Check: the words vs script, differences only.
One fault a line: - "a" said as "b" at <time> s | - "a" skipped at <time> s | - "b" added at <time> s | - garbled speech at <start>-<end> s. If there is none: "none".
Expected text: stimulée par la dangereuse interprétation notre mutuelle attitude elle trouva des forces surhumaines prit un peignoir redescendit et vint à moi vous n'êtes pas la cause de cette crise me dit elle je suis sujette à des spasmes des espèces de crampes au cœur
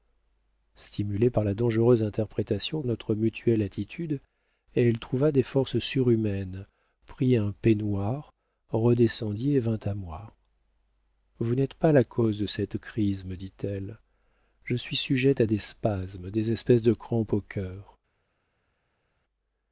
none